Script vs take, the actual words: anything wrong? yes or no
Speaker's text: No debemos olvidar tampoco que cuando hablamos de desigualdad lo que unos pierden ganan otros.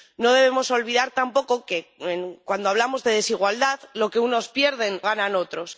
no